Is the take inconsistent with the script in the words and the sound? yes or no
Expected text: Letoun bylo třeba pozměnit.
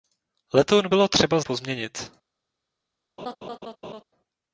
yes